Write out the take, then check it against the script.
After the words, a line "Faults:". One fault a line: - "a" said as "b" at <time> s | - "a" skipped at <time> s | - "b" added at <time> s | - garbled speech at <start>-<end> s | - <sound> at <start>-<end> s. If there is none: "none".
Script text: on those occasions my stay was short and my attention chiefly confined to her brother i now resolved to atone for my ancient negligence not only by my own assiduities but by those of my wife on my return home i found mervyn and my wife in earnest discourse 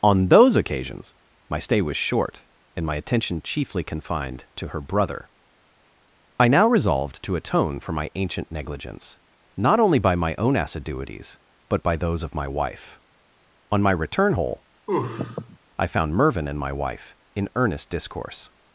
on those occasions my stay was short and my attention chiefly confined to her brother i now resolved to atone for my ancient negligence not only by my own assiduities but by those of my wife on my return hole i found mervyn and my wife in earnest discourse
Faults:
- "home" said as "hole" at 14.3 s
- sneeze at 14.9-15.6 s